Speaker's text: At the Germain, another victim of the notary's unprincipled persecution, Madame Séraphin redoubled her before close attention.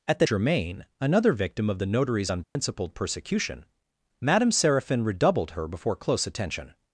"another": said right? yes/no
yes